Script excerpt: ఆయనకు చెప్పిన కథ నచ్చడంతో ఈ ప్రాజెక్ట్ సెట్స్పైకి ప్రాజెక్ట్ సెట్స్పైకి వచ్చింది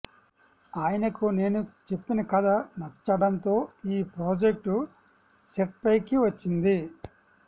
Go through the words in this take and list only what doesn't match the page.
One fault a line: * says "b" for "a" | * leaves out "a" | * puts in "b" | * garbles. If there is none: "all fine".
* puts in "నేను"
* leaves out "ప్రాజెక్ట్ సెట్స్పైకి"